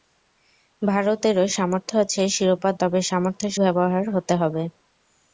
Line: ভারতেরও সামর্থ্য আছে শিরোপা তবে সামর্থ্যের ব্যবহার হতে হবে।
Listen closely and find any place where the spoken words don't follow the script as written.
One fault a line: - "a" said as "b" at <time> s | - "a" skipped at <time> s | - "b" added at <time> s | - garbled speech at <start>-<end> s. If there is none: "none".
none